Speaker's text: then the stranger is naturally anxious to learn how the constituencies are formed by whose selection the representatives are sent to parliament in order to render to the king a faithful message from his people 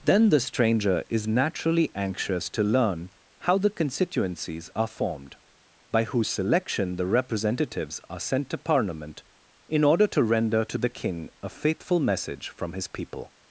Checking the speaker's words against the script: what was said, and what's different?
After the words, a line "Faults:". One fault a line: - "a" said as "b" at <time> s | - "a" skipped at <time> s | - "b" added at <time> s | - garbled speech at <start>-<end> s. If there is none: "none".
then the stranger is naturally anxious to learn how the constituencies are formed by whose selection the representatives are sent to parliament in order to render to the king a faithful message from his people
Faults:
none